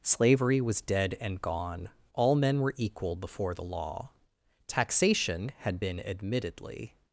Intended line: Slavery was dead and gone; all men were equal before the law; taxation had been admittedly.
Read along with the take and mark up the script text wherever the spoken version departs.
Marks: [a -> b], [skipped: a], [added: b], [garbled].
Slavery was dead and gone; all men were equal before the law; taxation had been admittedly.